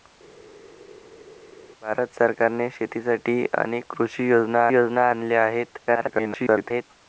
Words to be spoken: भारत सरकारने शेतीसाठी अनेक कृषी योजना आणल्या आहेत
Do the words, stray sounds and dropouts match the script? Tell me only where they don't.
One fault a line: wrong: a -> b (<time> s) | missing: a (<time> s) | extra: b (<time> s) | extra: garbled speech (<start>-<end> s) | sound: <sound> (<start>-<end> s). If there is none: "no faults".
extra: योजना (4.7 s)
extra: garbled speech (5.9-6.8 s)